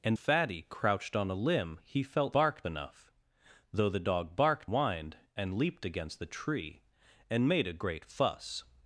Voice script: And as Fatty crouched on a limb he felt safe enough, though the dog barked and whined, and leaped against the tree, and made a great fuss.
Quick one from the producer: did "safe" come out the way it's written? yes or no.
no